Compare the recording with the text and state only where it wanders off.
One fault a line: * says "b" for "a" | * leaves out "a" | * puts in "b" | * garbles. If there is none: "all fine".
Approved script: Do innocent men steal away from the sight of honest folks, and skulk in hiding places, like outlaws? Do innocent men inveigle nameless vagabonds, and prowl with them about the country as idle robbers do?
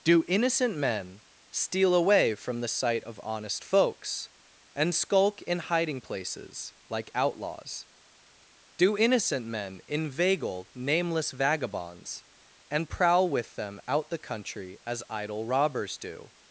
* says "out" for "about"